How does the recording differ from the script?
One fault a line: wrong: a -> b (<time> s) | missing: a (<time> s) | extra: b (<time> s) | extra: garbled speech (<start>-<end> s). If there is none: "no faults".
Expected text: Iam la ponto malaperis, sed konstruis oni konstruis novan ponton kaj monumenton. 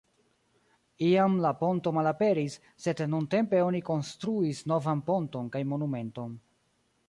wrong: konstruis -> nuntempe (3.1 s)